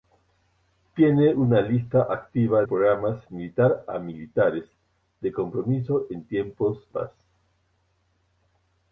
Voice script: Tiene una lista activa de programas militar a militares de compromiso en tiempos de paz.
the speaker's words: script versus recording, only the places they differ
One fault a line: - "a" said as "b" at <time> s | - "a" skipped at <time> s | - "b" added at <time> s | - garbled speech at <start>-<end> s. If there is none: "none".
- "de" skipped at 2.6 s
- "de" skipped at 6.9 s